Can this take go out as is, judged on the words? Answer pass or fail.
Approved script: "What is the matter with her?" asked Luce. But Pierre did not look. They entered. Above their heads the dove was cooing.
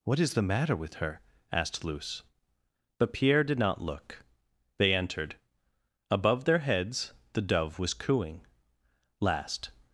fail